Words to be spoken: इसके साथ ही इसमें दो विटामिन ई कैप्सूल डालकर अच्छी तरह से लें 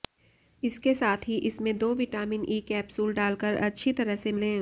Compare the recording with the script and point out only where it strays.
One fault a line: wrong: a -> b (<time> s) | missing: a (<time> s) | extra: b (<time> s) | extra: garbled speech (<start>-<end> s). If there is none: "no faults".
no faults